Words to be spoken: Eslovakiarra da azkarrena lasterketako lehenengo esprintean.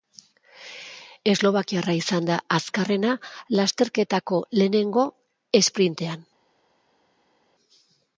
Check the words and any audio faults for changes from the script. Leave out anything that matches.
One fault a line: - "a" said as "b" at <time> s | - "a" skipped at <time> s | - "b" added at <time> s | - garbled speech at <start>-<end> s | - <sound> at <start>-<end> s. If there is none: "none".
- "izan" added at 2.0 s